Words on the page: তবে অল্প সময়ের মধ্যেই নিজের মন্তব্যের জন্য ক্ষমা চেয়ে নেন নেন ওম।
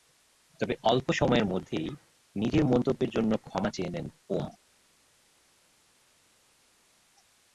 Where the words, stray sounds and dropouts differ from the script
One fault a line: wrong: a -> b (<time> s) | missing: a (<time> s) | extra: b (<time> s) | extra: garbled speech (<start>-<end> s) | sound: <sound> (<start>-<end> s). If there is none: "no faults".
missing: নেন (4.0 s)